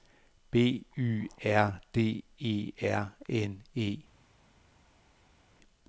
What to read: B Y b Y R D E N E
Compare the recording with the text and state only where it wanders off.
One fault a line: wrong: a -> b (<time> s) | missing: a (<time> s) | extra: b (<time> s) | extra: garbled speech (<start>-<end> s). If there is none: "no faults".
missing: b Y (1.3 s)
extra: R (2.8 s)